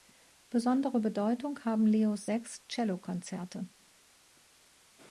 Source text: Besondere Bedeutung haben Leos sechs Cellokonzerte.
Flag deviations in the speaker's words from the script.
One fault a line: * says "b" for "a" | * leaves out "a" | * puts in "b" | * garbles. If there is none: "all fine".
all fine